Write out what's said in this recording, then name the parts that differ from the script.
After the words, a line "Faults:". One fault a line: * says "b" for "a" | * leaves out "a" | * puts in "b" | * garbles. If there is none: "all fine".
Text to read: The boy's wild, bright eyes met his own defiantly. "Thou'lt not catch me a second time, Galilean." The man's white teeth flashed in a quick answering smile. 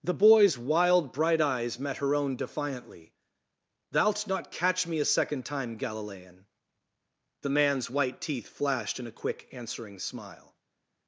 The boy's wild, bright eyes met her own defiantly. "Thou'lt not catch me a second time, Galilean." The man's white teeth flashed in a quick answering smile.
Faults:
* says "her" for "his"